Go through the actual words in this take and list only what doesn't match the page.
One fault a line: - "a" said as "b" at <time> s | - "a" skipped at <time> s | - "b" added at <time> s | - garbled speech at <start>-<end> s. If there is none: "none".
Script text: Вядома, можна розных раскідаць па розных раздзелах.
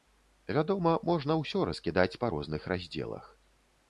- "розных" said as "ўсё" at 1.4 s